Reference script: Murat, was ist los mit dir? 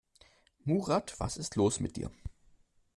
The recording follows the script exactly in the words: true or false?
true